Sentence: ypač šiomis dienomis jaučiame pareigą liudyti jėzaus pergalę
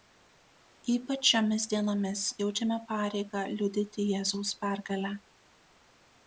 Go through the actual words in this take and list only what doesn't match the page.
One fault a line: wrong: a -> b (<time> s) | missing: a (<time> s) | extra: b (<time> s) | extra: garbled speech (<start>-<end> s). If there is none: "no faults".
no faults